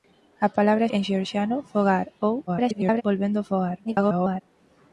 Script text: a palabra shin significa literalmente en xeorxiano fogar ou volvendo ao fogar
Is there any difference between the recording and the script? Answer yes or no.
yes